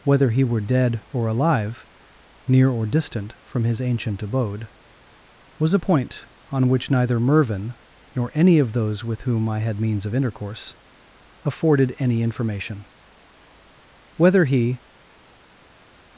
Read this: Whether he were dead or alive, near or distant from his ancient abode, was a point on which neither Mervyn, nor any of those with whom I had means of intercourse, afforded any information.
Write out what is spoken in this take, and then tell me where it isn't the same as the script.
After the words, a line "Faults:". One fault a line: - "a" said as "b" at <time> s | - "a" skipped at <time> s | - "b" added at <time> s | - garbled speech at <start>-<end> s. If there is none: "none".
Whether he were dead or alive, near or distant from his ancient abode, was a point on which neither Mervyn, nor any of those with whom I had means of intercourse, afforded any information. Whether he
Faults:
- "Whether he" added at 14.2 s